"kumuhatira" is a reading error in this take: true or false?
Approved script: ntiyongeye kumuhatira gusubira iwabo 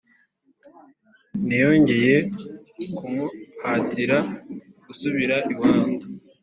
false